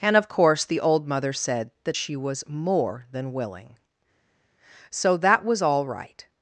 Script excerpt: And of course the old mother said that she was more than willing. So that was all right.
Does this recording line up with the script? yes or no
yes